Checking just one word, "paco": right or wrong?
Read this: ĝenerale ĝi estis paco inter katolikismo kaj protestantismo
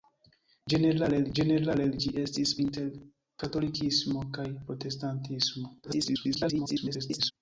wrong